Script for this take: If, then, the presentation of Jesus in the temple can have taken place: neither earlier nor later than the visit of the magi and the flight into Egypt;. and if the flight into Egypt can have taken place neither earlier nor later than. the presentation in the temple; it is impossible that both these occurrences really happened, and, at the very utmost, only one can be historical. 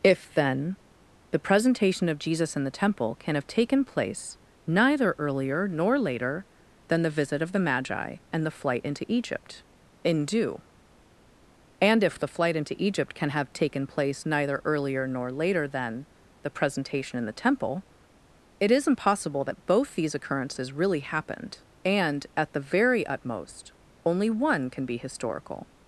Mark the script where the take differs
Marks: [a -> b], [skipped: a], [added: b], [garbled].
If, then, the presentation of Jesus in the temple can have taken place: neither earlier nor later than the visit of the magi and the flight into Egypt;. [added: in due] and if the flight into Egypt can have taken place neither earlier nor later than. the presentation in the temple; it is impossible that both these occurrences really happened, and, at the very utmost, only one can be historical.